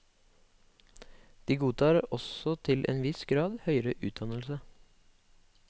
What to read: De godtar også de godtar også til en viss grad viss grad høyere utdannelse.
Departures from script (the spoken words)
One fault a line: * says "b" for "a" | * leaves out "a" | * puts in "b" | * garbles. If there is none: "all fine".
* leaves out "de godtar også"
* leaves out "viss grad"